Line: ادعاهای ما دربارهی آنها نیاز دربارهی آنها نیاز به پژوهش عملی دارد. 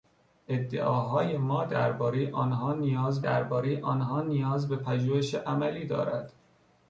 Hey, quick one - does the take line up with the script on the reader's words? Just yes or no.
yes